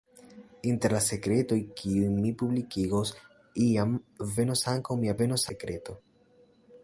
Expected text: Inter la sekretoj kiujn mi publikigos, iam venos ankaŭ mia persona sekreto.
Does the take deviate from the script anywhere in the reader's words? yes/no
yes